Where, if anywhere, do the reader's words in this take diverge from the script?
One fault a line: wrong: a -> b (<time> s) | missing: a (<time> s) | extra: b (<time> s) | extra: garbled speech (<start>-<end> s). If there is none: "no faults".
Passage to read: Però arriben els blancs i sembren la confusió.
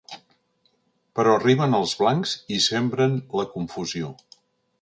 no faults